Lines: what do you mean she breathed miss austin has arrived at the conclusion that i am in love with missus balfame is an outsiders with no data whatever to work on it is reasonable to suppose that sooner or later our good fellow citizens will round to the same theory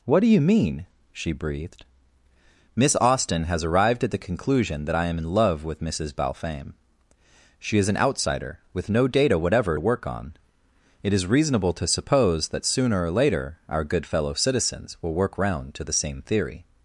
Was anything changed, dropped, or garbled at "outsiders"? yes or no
yes